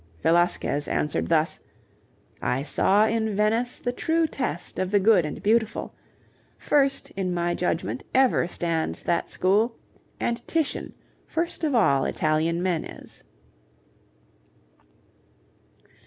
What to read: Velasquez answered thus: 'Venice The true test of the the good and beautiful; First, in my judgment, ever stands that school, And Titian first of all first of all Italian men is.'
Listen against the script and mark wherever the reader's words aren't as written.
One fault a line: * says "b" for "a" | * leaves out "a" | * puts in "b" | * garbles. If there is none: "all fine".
* puts in "I saw in"
* leaves out "the"
* leaves out "first of all"